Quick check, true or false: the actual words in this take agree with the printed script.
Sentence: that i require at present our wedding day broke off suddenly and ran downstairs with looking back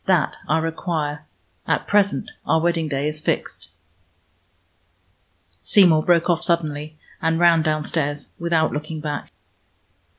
false